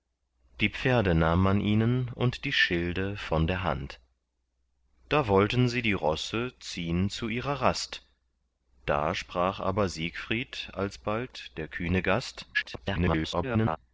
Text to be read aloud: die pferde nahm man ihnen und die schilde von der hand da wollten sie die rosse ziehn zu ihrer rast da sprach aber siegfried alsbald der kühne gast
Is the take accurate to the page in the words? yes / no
no